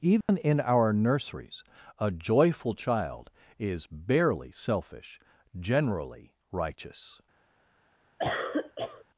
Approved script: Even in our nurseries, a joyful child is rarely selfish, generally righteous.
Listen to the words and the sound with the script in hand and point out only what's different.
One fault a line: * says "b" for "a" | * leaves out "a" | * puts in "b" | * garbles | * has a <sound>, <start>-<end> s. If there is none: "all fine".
* has a dropout, 0.2-0.3 s
* says "barely" for "rarely"
* has a cough, 8.2-9.0 s